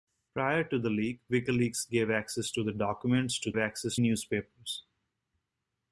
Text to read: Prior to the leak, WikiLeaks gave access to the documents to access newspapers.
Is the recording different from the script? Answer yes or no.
no